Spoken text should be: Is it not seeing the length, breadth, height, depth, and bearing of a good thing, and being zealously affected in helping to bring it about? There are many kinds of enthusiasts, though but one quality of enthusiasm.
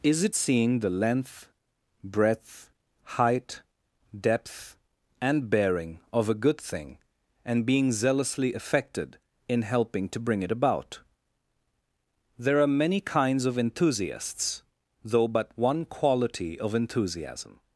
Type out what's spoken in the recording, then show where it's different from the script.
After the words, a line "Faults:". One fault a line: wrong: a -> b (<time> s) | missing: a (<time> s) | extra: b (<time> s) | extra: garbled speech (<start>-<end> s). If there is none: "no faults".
Is it seeing the length, breadth, height, depth, and bearing of a good thing, and being zealously affected in helping to bring it about? There are many kinds of enthusiasts, though but one quality of enthusiasm.
Faults:
missing: not (0.3 s)